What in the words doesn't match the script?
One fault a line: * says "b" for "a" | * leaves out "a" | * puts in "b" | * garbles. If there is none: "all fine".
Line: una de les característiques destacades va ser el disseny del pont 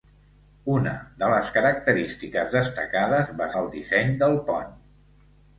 * leaves out "ser"